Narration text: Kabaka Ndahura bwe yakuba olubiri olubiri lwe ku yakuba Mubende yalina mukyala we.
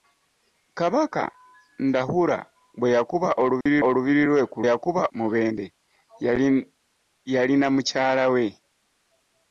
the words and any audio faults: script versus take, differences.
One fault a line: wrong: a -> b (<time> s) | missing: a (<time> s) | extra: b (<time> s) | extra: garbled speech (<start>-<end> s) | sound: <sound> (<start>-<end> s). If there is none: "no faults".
sound: dropout (3.6-3.7 s)